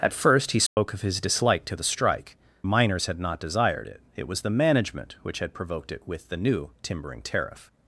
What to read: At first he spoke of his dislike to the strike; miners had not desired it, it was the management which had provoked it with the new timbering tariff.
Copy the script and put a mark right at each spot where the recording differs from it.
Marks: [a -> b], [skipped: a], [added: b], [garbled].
At first he spoke of his dislike to the strike; miners had not desired it, it was the management which had provoked it with the new timbering tariff.